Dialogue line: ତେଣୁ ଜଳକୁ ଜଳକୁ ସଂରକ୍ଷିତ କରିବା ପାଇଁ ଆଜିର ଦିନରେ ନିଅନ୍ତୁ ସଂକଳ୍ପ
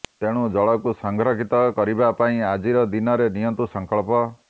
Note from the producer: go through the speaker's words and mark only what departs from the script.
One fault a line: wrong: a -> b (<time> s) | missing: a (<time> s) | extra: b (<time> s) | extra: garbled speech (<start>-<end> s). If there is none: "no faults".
missing: ଜଳକୁ (0.9 s)